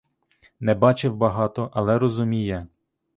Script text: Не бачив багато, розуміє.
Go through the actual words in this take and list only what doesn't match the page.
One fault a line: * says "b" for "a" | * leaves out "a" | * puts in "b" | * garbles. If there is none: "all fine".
* puts in "але"